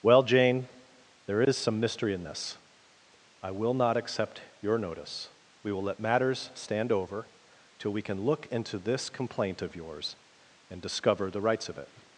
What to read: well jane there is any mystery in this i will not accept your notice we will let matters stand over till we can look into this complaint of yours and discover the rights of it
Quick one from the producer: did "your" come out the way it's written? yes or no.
yes